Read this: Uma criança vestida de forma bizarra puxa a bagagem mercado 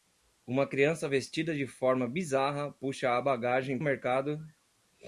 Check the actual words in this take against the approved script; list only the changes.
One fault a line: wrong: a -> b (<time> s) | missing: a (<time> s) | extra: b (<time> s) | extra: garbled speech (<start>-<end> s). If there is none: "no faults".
no faults